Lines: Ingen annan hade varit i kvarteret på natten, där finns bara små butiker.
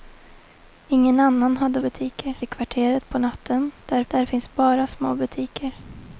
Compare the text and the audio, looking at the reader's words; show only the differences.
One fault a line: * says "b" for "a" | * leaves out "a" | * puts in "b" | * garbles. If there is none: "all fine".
* says "butiker" for "varit"
* puts in "där"